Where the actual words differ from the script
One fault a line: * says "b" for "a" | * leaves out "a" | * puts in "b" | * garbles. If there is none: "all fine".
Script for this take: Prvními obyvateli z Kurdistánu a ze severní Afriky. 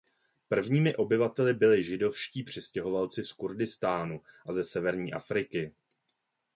* puts in "byli židovští přistěhovalci"